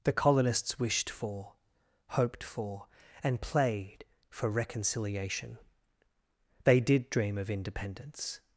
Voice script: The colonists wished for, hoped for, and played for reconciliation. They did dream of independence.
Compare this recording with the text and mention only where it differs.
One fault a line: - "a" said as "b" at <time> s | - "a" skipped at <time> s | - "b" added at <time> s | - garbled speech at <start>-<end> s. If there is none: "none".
none